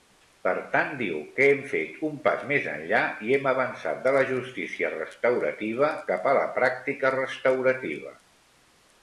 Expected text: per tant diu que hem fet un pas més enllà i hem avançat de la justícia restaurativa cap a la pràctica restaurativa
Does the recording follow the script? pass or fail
pass